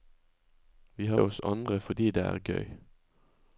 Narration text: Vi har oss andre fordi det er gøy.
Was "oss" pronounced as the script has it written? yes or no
yes